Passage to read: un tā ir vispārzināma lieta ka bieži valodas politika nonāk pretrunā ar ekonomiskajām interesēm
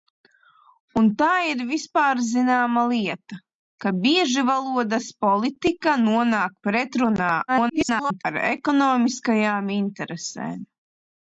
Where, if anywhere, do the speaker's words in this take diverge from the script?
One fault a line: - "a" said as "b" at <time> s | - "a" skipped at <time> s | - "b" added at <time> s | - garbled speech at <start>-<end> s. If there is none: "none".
- garbled speech at 7.5-8.2 s